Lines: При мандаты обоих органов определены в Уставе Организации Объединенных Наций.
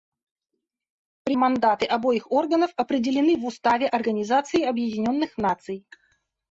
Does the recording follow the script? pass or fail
pass